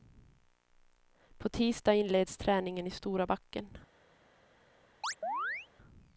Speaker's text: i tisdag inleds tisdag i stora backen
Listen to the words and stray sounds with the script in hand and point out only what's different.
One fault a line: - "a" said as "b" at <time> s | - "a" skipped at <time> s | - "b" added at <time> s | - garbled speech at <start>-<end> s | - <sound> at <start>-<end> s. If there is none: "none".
- "i" said as "på" at 1.4 s
- "tisdag" said as "träningen" at 2.4 s
- chirp at 5.0-5.7 s